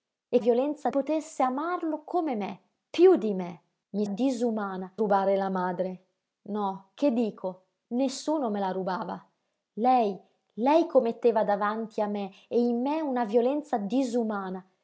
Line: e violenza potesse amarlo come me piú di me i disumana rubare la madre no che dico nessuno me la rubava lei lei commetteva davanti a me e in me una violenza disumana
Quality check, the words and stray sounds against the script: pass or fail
pass